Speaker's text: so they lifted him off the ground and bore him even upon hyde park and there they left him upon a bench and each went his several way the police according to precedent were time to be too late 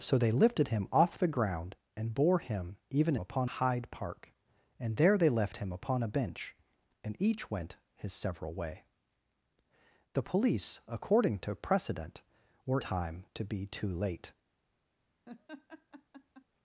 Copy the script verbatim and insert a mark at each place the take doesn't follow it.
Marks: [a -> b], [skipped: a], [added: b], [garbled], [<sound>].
so they lifted him off the ground and bore him even upon hyde park and there they left him upon a bench and each went his several way the police according to precedent were time to be too late [laugh]